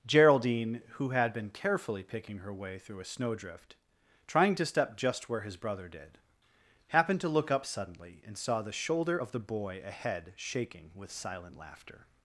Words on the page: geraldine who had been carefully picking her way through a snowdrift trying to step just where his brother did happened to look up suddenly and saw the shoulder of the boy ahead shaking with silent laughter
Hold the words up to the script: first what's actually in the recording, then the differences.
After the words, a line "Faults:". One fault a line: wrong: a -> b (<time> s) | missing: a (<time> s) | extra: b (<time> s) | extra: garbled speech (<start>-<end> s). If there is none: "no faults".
geraldine who had been carefully picking her way through a snowdrift trying to step just where his brother did happened to look up suddenly and saw the shoulder of the boy ahead shaking with silent laughter
Faults:
no faults